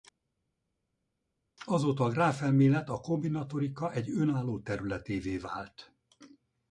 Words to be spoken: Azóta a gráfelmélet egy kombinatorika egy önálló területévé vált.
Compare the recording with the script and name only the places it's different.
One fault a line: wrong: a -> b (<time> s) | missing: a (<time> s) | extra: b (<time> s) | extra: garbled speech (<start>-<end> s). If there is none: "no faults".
wrong: egy -> a (2.9 s)